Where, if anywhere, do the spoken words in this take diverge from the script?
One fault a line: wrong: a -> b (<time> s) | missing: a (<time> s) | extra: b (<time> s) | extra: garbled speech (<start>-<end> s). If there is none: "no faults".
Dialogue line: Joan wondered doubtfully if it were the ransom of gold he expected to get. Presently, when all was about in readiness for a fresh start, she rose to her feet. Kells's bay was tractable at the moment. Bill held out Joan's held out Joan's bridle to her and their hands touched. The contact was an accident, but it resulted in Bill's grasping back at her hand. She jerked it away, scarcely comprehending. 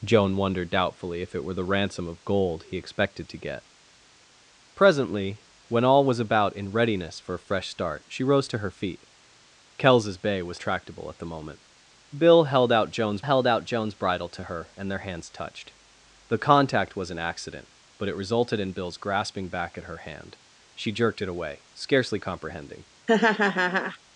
no faults